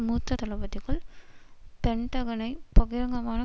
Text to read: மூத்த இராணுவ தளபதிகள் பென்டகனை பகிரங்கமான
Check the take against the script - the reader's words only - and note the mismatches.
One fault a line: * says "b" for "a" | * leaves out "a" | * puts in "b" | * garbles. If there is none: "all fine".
* leaves out "இராணுவ"